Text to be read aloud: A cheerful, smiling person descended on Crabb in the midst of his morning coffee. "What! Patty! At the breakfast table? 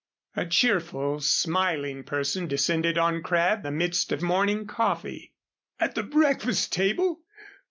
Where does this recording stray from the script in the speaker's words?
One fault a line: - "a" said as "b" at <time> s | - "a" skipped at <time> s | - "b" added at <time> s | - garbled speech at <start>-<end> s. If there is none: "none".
- "in" skipped at 3.7 s
- "his" skipped at 4.2 s
- "What Patty" skipped at 5.3 s